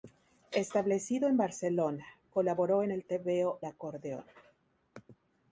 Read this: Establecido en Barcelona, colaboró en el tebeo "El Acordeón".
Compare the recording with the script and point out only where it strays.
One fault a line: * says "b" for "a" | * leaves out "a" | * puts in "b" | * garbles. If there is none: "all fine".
* leaves out "El"